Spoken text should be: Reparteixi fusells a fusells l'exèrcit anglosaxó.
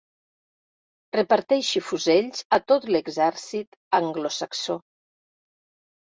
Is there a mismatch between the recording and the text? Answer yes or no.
yes